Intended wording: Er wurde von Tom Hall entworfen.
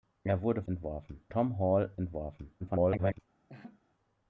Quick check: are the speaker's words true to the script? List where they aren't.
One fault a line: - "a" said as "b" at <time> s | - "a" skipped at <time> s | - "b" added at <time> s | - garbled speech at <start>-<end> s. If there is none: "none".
- "von" said as "entworfen" at 0.7 s
- garbled speech at 2.6-3.2 s